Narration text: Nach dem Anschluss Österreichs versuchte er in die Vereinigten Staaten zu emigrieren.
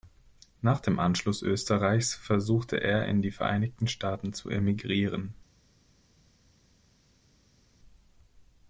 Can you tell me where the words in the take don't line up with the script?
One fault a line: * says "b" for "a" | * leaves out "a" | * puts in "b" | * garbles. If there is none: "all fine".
all fine